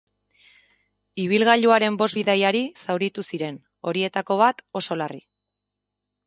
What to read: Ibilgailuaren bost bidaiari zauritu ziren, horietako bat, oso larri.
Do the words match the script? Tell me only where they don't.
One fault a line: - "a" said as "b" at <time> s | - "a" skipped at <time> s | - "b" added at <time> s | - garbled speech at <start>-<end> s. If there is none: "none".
none